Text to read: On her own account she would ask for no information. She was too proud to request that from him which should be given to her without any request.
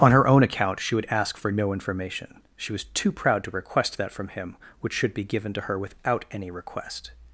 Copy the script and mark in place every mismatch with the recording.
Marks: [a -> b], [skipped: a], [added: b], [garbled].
On her own account she would ask for no information. She was too proud to request that from him which should be given to her without any request.